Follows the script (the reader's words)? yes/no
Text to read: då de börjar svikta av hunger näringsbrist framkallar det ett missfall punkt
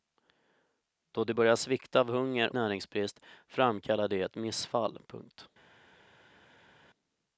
yes